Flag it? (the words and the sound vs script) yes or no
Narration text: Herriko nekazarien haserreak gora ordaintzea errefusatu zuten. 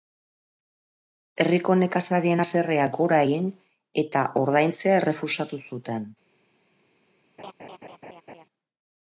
yes